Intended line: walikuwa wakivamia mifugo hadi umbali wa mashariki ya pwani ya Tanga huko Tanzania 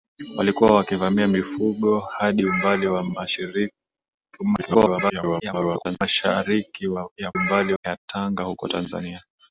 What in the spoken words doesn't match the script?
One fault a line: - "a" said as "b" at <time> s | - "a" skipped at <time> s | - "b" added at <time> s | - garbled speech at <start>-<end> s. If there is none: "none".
- garbled speech at 4.6-6.0 s
- "pwani" said as "umbali" at 7.3 s